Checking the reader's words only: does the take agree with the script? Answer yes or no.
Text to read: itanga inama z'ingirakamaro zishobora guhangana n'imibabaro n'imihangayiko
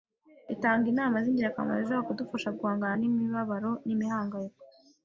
no